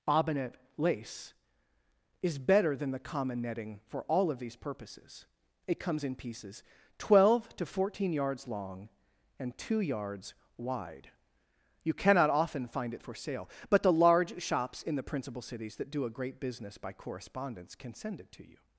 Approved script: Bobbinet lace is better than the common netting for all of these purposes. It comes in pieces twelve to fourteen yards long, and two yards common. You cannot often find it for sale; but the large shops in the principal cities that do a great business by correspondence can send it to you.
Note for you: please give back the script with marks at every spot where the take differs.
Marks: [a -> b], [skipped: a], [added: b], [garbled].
Bobbinet lace is better than the common netting for all of these purposes. It comes in pieces twelve to fourteen yards long, and two yards [common. -> wide] You cannot often find it for sale; but the large shops in the principal cities that do a great business by correspondence can send it to you.